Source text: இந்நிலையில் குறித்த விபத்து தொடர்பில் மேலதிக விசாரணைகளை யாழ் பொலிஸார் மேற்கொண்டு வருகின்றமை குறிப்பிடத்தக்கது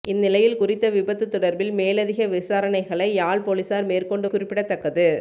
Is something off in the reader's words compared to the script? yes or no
yes